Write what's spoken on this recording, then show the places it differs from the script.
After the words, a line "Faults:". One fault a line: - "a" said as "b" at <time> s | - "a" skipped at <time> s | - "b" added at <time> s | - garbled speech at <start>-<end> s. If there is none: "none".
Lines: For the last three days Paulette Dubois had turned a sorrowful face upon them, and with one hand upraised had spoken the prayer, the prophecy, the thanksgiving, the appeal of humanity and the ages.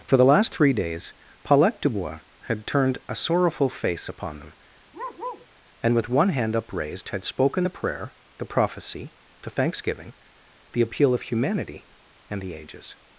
For the last three days Paulette Dubois had turned a sorrowful face upon them, and with one hand upraised had spoken the prayer, the prophecy, the thanksgiving, the appeal of humanity and the ages.
Faults:
none